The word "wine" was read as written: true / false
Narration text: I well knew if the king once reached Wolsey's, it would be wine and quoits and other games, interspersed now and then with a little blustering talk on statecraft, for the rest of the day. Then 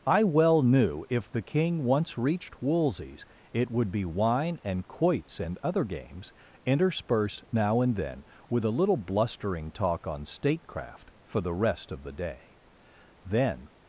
true